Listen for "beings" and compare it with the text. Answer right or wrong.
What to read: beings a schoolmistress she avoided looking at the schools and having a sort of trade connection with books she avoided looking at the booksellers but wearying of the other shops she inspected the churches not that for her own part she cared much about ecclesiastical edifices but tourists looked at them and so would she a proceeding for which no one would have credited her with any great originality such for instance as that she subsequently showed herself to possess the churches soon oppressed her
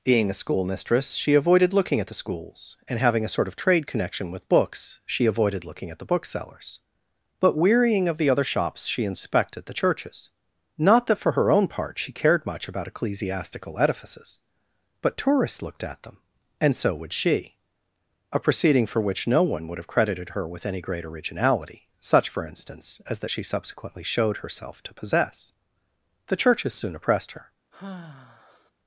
wrong